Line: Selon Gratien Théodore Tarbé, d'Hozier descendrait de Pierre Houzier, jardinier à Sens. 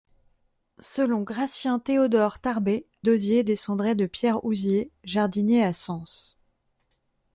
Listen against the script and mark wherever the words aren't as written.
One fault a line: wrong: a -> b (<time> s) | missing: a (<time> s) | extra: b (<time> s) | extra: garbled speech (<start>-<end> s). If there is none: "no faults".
no faults